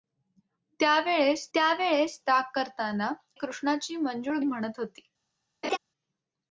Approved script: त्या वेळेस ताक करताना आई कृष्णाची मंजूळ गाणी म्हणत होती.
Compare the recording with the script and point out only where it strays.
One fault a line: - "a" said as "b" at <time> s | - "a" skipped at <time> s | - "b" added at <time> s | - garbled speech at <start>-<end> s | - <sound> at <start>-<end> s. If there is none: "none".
- "त्या वेळेस" added at 1.5 s
- "आई" skipped at 3.1 s
- "गाणी" skipped at 4.4 s
- laugh at 5.6-5.8 s